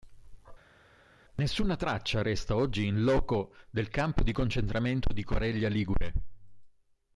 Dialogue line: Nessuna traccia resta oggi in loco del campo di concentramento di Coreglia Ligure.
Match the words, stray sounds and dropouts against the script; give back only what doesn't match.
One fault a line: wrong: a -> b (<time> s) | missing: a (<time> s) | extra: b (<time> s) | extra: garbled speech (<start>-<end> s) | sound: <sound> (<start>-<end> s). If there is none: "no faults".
no faults